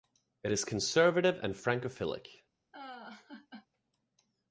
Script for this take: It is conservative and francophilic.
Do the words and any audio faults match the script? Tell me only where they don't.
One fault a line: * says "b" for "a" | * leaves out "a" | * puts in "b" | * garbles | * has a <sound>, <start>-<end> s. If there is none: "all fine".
* has a laugh, 2.7-3.7 s